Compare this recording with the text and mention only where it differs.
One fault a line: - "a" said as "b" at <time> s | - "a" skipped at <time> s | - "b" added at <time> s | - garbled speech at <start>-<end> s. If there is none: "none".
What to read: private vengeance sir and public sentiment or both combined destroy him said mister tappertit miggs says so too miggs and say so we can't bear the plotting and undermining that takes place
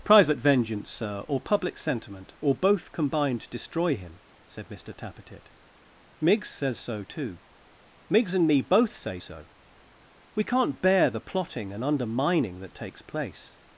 - "and" said as "or" at 1.3 s
- "me both" added at 8.5 s